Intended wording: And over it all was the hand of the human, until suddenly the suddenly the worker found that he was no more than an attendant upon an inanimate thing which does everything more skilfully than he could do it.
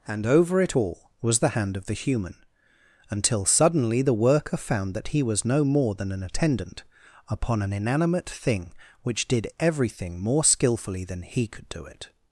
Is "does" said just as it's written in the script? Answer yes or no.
no